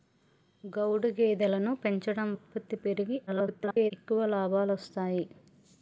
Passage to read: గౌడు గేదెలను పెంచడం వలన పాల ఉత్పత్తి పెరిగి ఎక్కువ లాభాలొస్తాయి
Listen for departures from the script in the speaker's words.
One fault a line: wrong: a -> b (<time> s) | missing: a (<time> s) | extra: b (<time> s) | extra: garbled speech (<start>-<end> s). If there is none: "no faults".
missing: వలన పాల (2.3 s)
extra: garbled speech (3.3-3.9 s)